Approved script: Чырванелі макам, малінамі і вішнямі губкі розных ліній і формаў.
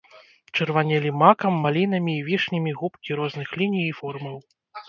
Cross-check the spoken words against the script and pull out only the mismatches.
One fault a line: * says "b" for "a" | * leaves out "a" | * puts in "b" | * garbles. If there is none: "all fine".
all fine